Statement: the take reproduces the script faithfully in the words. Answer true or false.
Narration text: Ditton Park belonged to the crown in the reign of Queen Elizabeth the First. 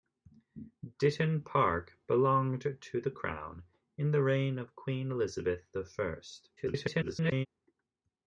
false